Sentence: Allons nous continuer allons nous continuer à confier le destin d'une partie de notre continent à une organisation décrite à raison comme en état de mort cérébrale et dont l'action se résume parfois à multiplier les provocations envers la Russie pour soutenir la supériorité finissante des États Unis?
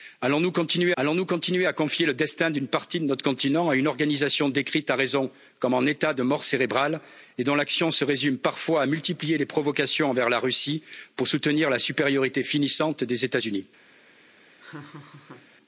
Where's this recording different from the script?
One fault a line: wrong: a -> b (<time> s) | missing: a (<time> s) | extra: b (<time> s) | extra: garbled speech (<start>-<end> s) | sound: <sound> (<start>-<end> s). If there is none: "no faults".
sound: laugh (14.6-15.5 s)